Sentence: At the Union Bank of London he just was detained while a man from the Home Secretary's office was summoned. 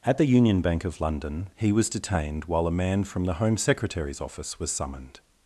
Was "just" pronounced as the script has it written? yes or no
no